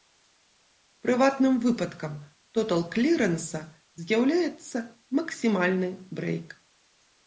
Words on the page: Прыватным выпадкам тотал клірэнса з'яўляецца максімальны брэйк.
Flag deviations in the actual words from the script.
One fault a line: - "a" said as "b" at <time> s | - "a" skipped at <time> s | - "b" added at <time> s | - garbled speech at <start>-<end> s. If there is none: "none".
none